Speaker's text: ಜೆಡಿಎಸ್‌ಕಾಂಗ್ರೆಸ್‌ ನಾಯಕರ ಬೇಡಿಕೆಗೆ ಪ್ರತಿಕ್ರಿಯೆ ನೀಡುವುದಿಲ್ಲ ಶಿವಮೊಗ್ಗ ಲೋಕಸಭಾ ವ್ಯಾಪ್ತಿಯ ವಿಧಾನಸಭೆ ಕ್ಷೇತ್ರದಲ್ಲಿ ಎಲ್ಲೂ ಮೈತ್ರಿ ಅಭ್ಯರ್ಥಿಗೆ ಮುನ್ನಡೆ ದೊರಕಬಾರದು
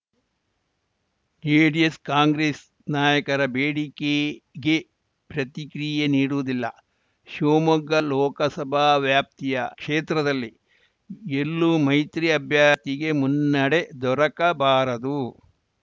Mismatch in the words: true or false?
true